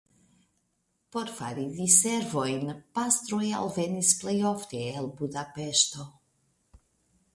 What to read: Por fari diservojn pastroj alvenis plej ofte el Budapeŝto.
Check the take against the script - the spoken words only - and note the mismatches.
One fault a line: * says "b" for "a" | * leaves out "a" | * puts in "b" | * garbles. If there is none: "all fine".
all fine